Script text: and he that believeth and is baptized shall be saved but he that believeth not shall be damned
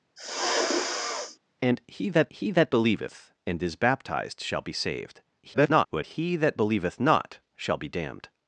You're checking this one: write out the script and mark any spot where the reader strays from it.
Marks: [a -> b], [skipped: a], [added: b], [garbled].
and he that [added: he that] believeth and is baptized shall be saved [garbled] but he that believeth not shall be damned